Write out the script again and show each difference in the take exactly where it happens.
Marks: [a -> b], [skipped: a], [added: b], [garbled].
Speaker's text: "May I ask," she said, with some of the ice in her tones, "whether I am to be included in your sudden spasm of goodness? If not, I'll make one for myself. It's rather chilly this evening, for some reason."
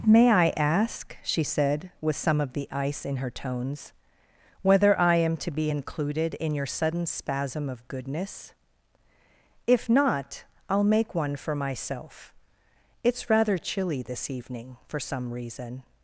"May I ask," she said, with some of the ice in her tones, "whether I am to be included in your sudden spasm of goodness? If not, I'll make one for myself. It's rather chilly this evening, for some reason."